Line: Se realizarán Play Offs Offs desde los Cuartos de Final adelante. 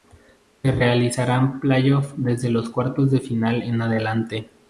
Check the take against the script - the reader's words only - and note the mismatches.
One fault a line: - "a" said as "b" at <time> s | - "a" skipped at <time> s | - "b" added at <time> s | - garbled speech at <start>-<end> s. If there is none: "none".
- "Offs" skipped at 2.1 s
- "en" added at 3.6 s